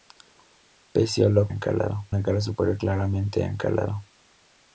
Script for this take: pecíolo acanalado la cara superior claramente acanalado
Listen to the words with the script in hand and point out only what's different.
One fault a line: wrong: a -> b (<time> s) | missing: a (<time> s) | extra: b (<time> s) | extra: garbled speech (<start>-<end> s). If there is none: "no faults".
no faults